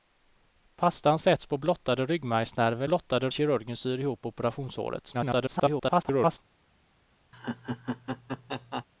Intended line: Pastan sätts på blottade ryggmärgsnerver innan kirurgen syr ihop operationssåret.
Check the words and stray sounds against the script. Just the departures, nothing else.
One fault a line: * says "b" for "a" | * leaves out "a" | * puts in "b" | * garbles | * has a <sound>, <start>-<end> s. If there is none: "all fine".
* says "blottade" for "innan"
* garbles
* has a laugh, 7.3-8.8 s